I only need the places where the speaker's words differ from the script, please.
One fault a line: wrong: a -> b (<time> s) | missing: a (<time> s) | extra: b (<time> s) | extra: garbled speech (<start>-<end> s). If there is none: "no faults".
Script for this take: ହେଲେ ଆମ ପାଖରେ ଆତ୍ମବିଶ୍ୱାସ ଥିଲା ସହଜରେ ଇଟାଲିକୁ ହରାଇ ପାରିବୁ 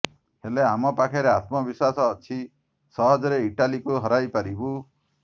wrong: ଥିଲା -> ଅଛି (2.1 s)